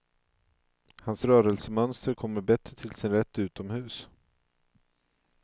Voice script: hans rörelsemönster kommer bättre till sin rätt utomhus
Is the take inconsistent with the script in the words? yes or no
no